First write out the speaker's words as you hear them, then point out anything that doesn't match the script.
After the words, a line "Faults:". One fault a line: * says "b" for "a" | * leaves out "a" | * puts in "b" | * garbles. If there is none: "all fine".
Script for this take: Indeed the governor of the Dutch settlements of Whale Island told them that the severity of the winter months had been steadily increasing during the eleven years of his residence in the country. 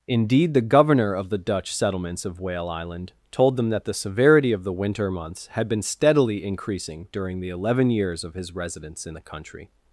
Indeed the governor of the Dutch settlements of Whale Island told them that the severity of the winter months had been steadily increasing during the eleven years of his residence in the country.
Faults:
all fine